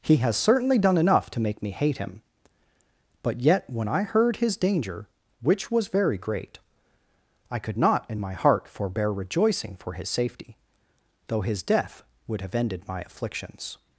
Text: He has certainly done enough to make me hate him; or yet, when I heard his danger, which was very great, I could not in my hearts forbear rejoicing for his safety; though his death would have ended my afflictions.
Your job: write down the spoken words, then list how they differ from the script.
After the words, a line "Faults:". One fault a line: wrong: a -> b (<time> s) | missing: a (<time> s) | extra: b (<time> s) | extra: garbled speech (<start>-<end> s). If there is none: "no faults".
He has certainly done enough to make me hate him; but yet, when I heard his danger, which was very great, I could not in my heart forbear rejoicing for his safety; though his death would have ended my afflictions.
Faults:
wrong: or -> but (3.2 s)
wrong: hearts -> heart (8.3 s)